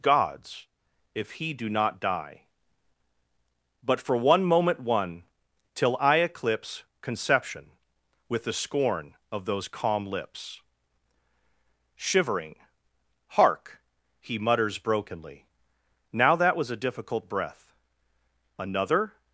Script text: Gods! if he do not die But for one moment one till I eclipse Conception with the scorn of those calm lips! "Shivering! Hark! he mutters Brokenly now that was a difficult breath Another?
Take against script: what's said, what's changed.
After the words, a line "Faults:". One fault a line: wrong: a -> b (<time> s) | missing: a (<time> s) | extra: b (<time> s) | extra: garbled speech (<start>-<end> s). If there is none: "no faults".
Gods! if he do not die But for one moment one till I eclipse Conception with the scorn of those calm lips! "Shivering! Hark! he mutters Brokenly now that was a difficult breath Another?
Faults:
no faults